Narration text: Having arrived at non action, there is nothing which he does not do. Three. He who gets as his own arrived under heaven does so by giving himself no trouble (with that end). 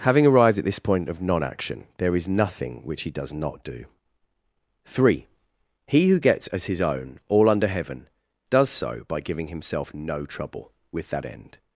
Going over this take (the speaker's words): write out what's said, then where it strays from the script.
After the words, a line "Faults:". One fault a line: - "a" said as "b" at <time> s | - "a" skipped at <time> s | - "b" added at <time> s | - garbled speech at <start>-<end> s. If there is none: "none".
Having arrived at this point of non action, there is nothing which he does not do. Three. He who gets as his own all under heaven does so by giving himself no trouble (with that end).
Faults:
- "this point of" added at 0.7 s
- "arrived" said as "all" at 7.3 s